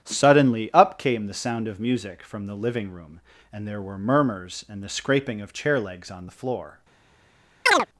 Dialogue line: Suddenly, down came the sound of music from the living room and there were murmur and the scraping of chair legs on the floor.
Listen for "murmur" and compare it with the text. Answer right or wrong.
wrong